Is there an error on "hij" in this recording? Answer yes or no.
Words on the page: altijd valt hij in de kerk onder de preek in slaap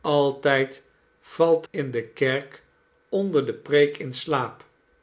yes